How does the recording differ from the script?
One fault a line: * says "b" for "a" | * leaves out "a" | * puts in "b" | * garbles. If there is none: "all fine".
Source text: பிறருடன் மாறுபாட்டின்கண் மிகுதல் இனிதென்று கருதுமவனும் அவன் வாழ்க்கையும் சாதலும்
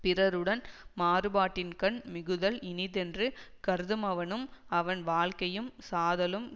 all fine